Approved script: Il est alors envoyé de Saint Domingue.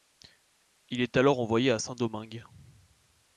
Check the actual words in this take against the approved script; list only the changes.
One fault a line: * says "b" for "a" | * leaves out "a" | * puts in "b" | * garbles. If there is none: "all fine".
* says "à" for "de"